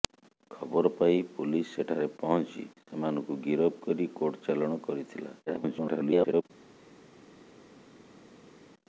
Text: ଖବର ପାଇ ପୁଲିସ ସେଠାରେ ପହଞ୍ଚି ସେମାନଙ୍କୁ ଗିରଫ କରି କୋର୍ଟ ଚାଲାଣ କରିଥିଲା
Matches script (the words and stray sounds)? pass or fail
fail